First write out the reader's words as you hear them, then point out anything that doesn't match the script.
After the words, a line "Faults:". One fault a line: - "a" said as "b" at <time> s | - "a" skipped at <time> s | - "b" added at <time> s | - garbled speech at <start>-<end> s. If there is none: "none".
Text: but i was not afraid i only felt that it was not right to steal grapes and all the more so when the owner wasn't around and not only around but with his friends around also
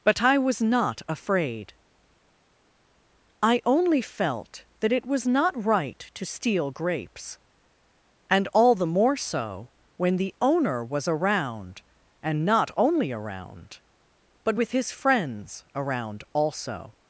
but i was not afraid i only felt that it was not right to steal grapes and all the more so when the owner was around and not only around but with his friends around also
Faults:
- "wasn't" said as "was" at 10.8 s